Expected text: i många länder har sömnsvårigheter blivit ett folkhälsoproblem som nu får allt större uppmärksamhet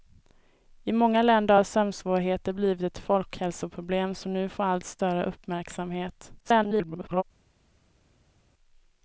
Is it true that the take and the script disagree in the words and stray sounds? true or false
true